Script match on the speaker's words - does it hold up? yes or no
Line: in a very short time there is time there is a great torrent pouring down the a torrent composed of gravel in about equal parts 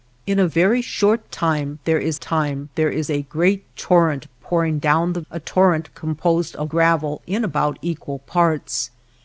yes